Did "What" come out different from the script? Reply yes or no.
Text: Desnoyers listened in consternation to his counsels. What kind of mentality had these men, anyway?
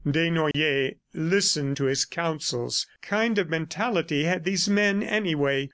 yes